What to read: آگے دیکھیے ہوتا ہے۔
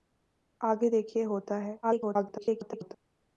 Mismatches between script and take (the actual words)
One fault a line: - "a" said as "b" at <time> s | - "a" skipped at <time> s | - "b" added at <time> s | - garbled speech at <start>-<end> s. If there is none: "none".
- garbled speech at 1.8-2.9 s